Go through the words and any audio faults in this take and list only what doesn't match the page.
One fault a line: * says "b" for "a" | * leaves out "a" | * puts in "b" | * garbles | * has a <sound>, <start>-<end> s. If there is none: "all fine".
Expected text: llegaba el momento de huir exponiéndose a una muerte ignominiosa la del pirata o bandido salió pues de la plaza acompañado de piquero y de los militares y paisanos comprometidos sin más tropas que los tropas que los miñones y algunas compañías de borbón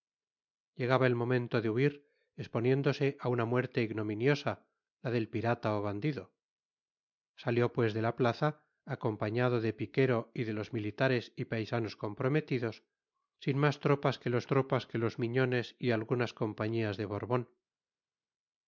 all fine